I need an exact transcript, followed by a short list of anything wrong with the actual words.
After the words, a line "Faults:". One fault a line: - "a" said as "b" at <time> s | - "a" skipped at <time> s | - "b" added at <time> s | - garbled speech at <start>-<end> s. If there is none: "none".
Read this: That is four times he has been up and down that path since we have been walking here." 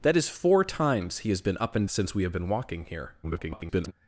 That is four times he has been up and since we have been walking here." [garbled]
Faults:
- "down that path" skipped at 1.9 s
- garbled speech at 3.2-3.9 s